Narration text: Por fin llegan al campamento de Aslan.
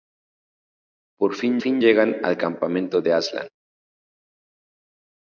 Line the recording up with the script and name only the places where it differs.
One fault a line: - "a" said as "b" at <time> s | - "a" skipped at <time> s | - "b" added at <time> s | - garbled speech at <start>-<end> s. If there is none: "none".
- "fin" added at 1.6 s